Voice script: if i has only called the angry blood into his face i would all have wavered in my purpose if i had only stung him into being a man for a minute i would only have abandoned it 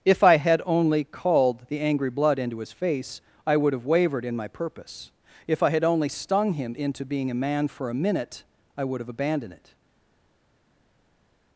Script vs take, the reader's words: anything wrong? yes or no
yes